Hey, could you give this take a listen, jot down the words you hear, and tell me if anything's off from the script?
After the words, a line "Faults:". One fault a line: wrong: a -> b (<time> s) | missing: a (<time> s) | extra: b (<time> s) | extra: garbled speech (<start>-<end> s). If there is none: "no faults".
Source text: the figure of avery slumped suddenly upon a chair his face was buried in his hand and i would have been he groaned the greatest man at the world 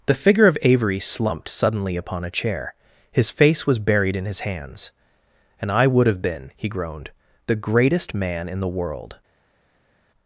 the figure of avery slumped suddenly upon a chair his face was buried in his hands and i would have been he groaned the greatest man in the world
Faults:
wrong: hand -> hands (4.4 s)
wrong: at -> in (8.5 s)